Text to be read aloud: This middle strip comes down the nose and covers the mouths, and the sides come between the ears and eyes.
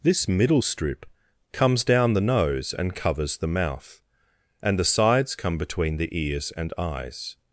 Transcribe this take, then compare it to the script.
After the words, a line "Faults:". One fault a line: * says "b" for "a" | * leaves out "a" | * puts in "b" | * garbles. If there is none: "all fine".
This middle strip comes down the nose and covers the mouth, and the sides come between the ears and eyes.
Faults:
* says "mouth" for "mouths"